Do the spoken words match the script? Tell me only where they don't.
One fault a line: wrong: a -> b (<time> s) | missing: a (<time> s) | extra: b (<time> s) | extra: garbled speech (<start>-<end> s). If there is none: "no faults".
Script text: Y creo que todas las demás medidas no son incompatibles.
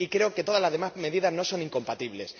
no faults